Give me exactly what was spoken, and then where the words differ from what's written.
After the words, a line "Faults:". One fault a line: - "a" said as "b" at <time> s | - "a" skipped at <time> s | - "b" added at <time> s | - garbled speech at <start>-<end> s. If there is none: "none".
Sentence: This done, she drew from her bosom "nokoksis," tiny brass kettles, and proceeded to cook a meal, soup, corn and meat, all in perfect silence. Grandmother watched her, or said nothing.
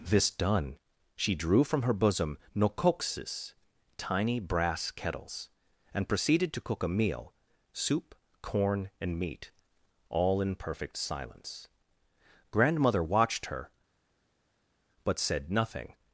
This done, she drew from her bosom "nokoksis," tiny brass kettles, and proceeded to cook a meal, soup, corn and meat, all in perfect silence. Grandmother watched her, but said nothing.
Faults:
- "or" said as "but" at 15.0 s